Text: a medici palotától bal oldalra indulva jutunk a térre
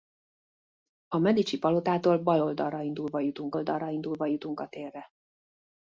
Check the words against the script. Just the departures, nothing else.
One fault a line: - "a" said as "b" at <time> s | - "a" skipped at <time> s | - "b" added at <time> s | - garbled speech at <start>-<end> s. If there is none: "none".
- "oldalra indulva jutunk" added at 3.5 s